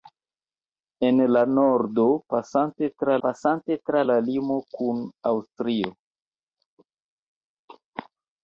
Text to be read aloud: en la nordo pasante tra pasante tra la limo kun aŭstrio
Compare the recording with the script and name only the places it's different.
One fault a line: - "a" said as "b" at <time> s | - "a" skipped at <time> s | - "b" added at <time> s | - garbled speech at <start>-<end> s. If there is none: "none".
none